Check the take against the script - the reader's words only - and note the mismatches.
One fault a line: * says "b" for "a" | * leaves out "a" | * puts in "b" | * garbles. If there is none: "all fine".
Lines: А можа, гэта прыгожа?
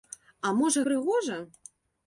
* leaves out "гэта"